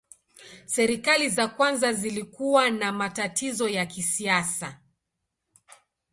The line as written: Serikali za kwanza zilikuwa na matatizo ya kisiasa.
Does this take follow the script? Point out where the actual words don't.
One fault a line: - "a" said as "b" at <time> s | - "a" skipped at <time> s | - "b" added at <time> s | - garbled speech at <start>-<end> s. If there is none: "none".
none